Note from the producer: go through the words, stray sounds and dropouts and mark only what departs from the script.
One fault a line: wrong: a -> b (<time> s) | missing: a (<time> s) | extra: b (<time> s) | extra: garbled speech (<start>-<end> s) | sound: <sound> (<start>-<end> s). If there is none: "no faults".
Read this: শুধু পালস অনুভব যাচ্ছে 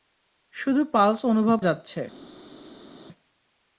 no faults